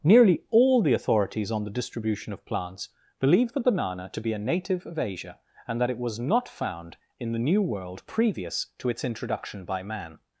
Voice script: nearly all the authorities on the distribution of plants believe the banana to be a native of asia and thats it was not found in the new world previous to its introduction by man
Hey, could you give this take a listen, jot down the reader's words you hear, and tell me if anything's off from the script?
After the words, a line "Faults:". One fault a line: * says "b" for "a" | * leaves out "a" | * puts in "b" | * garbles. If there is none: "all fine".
nearly all the authorities on the distribution of plants believe the banana to be a native of asia and that it was not found in the new world previous to its introduction by man
Faults:
* says "that" for "thats"